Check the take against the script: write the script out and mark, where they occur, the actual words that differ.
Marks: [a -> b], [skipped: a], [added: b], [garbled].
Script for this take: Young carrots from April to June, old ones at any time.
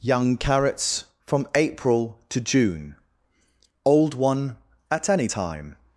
Young carrots from April to June, old [ones -> one] at any time.